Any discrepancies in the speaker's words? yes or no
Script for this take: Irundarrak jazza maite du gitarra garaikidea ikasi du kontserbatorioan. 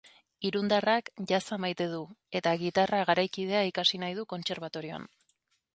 yes